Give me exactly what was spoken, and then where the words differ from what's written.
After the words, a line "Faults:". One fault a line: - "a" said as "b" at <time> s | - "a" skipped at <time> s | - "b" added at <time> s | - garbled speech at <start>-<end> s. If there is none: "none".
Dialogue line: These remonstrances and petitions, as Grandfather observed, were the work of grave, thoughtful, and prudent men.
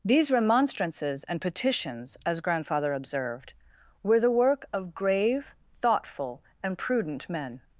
These remonstrances and petitions, as Grandfather observed, were the work of grave, thoughtful, and prudent men.
Faults:
none